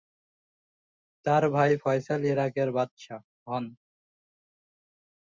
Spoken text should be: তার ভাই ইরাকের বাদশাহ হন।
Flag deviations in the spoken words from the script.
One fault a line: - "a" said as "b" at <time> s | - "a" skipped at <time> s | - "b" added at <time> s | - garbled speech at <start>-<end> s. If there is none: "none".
- "ফয়সাল" added at 1.8 s